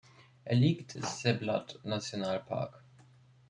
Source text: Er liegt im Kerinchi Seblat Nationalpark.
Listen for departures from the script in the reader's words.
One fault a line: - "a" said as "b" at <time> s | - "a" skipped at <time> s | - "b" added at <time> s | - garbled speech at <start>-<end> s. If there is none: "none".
- "im Kerinchi" skipped at 0.9 s